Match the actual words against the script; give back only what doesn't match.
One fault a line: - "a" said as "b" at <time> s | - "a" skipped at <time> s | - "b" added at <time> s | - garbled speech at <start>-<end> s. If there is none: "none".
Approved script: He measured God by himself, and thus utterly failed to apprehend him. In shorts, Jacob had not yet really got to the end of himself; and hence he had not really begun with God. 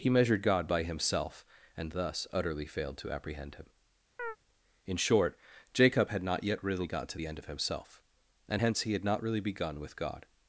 - "shorts" said as "short" at 5.0 s